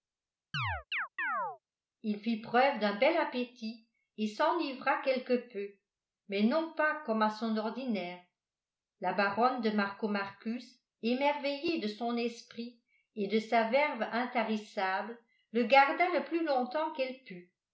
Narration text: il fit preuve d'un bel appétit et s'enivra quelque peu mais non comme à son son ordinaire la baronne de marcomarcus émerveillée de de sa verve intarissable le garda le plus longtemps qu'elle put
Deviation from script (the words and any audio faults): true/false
true